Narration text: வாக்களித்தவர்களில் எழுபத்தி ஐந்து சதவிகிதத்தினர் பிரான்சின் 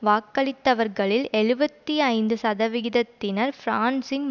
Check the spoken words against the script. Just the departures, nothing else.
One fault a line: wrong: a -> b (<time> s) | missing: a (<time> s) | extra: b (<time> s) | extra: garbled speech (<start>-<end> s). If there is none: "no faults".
no faults